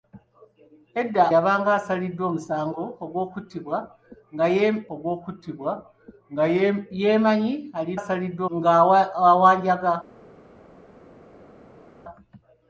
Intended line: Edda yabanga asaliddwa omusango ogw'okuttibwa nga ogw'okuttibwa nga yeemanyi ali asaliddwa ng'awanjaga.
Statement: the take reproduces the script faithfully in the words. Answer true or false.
true